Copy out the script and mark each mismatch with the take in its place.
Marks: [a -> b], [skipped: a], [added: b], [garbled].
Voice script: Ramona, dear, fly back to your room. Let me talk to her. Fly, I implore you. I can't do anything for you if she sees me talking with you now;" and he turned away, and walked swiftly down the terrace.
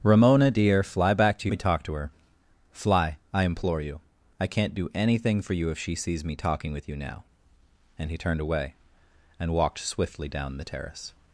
Ramona, dear, fly back to [skipped: your room. Let] me talk to her. Fly, I implore you. I can't do anything for you if she sees me talking with you now;" and he turned away, and walked swiftly down the terrace.